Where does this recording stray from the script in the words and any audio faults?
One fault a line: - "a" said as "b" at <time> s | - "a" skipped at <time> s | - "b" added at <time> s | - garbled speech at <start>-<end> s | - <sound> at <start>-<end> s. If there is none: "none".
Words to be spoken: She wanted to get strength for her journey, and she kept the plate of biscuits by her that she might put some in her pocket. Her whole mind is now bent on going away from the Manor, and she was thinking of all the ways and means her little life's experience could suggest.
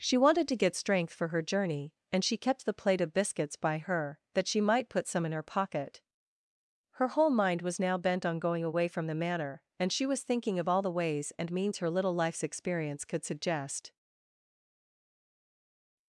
- "is" said as "was" at 7.6 s